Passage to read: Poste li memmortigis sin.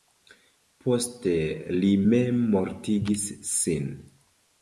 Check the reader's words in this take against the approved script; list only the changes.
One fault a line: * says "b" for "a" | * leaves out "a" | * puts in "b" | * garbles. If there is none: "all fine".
all fine